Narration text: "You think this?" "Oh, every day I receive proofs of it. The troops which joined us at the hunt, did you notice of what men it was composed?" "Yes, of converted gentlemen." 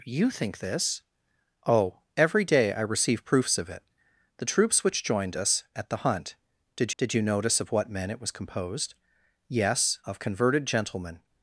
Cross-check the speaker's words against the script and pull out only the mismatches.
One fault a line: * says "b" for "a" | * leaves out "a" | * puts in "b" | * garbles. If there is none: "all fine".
* puts in "did"